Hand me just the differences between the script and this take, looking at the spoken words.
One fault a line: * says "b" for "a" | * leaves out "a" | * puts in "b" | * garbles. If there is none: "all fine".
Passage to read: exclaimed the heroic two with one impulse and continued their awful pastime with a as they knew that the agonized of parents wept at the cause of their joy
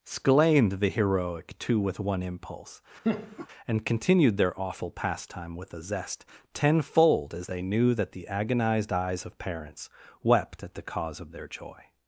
* puts in "zest tenfold"
* puts in "eyes"